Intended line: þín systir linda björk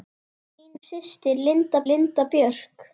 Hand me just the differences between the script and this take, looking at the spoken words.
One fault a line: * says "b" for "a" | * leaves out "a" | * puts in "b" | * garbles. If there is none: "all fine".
* puts in "linda"